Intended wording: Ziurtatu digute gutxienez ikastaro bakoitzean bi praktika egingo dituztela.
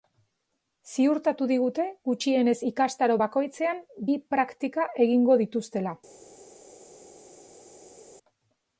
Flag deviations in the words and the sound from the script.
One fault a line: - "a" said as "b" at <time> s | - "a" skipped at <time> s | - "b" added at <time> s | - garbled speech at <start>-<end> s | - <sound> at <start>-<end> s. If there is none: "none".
none